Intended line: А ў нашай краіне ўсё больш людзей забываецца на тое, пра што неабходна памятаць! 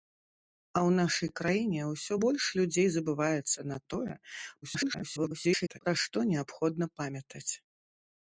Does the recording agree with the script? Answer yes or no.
no